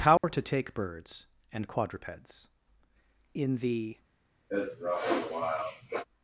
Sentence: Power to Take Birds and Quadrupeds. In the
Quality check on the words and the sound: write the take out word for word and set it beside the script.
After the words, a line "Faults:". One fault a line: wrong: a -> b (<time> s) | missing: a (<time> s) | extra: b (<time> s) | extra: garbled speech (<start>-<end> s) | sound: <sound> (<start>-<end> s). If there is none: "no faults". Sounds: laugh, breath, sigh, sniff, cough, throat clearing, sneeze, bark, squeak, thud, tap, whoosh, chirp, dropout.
Power to Take Birds and Quadrupeds. In the
Faults:
sound: dropout (0.2-0.2 s)
sound: sniff (4.5-6.1 s)